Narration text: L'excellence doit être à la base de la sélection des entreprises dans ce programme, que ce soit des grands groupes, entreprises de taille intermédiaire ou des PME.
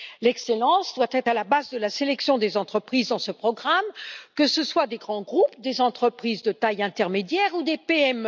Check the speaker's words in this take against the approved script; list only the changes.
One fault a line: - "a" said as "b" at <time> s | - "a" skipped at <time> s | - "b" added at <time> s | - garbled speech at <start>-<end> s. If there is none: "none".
- "des" added at 5.6 s